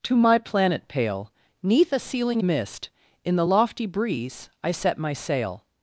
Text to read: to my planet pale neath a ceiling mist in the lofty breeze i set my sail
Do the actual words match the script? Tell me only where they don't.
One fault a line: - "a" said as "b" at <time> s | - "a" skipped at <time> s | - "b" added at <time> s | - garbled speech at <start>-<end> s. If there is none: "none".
none